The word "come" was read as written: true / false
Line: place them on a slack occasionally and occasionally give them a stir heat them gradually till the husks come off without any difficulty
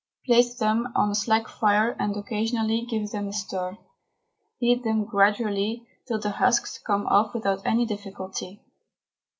true